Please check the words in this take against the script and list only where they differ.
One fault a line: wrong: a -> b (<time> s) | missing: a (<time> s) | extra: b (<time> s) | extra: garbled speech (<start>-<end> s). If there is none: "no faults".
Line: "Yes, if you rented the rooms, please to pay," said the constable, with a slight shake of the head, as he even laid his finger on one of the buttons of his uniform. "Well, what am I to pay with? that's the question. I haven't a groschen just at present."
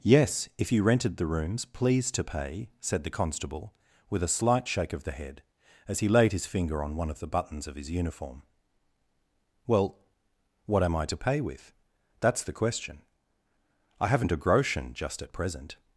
missing: even (6.1 s)